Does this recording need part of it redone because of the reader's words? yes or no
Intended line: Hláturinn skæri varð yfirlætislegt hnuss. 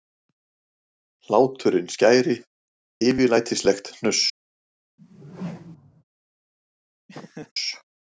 yes